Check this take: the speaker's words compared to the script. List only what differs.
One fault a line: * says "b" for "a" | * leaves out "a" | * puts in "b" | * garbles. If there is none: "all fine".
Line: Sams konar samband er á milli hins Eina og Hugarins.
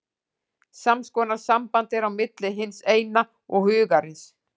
all fine